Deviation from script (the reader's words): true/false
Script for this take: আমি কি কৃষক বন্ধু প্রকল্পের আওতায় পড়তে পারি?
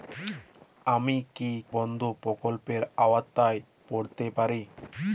true